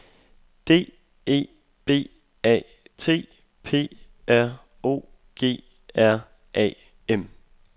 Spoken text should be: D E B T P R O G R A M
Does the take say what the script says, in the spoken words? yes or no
no